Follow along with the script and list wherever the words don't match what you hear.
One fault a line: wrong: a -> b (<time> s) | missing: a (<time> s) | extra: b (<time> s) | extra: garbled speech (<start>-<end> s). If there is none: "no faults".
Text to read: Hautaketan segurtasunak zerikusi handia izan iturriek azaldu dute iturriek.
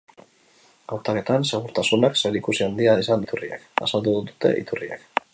no faults